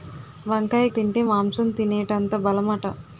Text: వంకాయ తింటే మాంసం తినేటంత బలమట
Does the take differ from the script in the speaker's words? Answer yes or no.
no